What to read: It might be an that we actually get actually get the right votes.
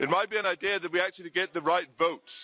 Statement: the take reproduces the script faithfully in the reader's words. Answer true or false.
false